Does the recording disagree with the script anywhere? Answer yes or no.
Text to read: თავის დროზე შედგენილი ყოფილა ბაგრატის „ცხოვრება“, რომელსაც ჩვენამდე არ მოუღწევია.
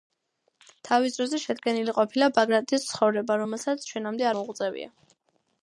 yes